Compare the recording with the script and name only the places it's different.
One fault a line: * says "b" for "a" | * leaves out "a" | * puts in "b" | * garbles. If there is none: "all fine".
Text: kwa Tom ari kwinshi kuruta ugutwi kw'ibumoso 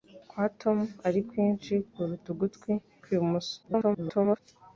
* garbles